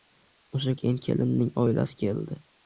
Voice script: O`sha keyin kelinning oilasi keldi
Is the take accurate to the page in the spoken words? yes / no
yes